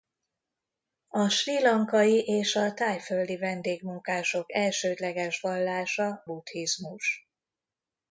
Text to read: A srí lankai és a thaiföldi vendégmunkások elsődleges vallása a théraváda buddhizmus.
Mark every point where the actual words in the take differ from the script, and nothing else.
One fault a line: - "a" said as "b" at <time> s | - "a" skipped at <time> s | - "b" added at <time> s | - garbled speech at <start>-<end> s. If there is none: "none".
- "a théraváda" skipped at 6.2 s